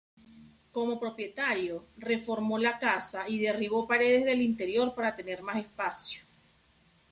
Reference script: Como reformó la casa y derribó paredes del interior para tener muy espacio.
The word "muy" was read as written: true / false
false